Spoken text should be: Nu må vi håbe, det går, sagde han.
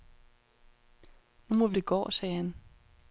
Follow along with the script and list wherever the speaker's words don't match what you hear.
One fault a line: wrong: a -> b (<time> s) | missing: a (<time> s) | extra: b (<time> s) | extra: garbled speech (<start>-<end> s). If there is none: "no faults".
missing: håbe (1.8 s)